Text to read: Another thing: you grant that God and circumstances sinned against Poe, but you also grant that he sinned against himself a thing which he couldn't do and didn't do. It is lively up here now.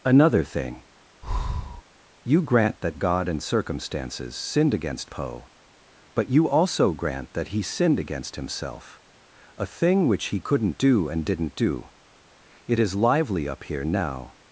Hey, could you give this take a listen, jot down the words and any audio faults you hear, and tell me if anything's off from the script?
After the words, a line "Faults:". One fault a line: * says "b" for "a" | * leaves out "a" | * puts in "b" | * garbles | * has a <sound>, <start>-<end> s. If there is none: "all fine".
Another thing: you grant that God and circumstances sinned against Poe, but you also grant that he sinned against himself a thing which he couldn't do and didn't do. It is lively up here now.
Faults:
* has a breath, 1.2-1.8 s